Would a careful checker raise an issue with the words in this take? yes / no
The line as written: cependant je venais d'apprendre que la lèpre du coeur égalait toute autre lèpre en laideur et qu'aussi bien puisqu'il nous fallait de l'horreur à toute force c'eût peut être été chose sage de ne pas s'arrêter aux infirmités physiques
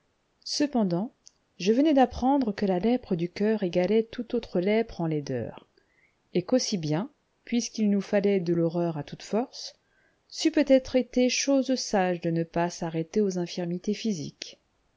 no